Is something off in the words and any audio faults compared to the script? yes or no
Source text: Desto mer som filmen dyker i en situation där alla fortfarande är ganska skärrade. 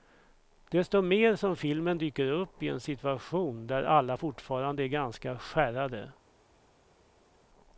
yes